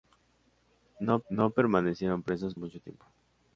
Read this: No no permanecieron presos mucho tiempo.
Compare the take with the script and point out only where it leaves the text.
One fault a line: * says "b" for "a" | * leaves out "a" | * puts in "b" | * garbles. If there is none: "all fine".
all fine